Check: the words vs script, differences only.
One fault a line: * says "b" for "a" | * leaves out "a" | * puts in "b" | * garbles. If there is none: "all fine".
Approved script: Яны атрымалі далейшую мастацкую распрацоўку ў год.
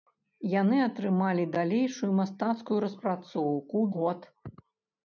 all fine